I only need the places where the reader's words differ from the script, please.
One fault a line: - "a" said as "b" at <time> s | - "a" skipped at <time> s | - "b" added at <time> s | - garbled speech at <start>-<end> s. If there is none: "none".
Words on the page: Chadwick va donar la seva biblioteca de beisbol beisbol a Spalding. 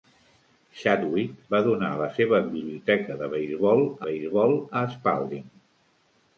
none